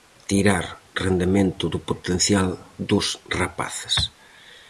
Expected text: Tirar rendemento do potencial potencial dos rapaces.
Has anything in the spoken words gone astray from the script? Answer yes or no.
yes